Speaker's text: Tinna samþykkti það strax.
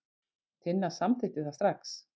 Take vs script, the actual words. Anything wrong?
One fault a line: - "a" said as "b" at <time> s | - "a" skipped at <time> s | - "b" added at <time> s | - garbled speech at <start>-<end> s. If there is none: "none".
none